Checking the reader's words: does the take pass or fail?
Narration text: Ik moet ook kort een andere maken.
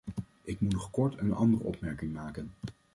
fail